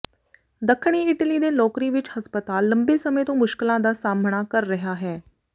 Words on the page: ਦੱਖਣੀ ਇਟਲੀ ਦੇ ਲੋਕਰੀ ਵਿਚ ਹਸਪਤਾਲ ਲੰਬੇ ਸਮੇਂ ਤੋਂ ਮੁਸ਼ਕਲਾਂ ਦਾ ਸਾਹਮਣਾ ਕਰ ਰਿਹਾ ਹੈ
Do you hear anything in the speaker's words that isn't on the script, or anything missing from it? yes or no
no